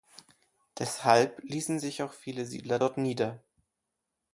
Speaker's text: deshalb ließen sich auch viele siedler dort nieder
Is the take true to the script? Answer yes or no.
yes